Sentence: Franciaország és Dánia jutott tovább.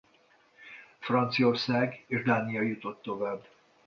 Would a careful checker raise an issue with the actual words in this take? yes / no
no